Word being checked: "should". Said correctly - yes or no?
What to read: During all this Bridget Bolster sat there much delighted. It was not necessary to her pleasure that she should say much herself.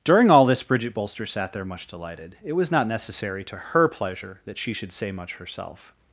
yes